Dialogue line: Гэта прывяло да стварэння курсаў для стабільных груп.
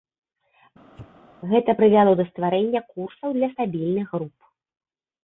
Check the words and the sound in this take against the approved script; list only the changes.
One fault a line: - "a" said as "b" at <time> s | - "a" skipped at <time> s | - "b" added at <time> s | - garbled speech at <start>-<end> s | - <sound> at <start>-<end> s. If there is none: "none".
- sneeze at 0.9-1.2 s